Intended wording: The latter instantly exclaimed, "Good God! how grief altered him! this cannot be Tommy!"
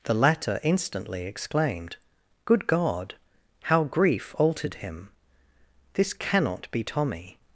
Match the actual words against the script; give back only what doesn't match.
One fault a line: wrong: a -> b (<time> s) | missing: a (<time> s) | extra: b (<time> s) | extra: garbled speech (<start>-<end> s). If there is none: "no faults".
no faults